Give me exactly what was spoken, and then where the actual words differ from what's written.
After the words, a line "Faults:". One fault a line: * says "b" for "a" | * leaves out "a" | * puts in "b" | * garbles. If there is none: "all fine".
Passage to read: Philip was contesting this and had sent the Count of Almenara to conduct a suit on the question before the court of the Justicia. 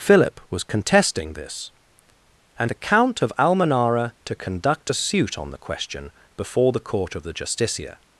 Philip was contesting this and the Count of Almenara to conduct a suit on the question before the court of the Justicia.
Faults:
* leaves out "had sent"